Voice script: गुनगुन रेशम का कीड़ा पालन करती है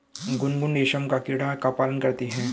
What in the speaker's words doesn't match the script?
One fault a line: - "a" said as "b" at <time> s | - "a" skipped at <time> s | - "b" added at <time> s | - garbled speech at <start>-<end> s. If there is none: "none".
- "का" added at 1.5 s